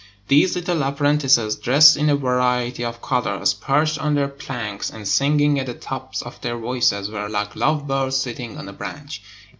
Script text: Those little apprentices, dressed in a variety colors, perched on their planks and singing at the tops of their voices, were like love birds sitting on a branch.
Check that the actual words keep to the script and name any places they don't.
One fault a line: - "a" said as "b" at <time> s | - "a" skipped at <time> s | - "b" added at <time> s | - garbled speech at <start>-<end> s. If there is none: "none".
- "Those" said as "These" at 0.3 s
- "of" added at 2.8 s